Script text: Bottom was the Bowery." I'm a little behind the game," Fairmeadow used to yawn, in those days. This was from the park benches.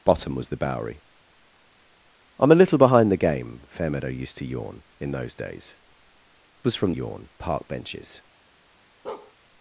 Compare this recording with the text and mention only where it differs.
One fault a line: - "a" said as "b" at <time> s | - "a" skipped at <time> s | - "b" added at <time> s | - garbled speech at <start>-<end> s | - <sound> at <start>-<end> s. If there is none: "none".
- "This" skipped at 5.8 s
- "the" said as "yawn" at 6.9 s
- bark at 9.0-9.3 s